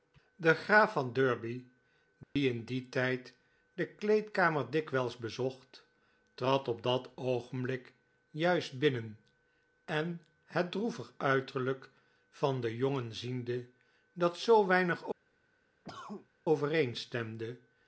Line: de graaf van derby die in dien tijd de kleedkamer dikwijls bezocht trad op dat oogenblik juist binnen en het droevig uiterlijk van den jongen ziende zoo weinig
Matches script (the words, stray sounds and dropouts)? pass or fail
fail